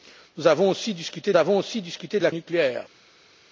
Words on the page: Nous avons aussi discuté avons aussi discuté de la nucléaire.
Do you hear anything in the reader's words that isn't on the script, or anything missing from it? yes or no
no